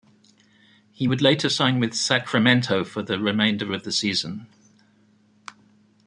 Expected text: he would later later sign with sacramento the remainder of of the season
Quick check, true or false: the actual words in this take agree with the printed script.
false